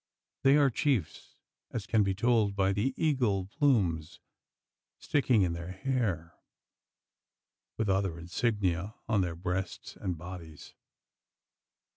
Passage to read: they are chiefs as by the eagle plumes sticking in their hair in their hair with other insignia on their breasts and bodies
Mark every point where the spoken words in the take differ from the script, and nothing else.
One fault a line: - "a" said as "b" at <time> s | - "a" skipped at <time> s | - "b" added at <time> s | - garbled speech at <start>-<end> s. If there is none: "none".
- "can be told" added at 1.9 s
- "in their hair" skipped at 6.3 s